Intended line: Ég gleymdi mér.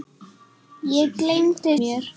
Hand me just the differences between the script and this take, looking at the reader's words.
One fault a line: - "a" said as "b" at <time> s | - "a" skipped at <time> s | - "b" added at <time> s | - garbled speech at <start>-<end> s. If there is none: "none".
none